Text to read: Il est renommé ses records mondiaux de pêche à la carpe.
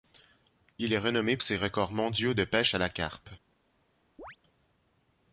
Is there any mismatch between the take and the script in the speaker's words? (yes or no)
no